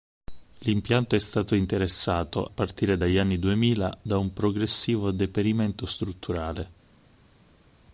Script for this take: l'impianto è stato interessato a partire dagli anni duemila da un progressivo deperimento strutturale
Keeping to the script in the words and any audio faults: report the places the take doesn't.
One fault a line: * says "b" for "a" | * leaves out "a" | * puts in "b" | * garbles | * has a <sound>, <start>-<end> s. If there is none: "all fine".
* leaves out "a"